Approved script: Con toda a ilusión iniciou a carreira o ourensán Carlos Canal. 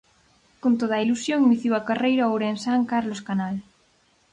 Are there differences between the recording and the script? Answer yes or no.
no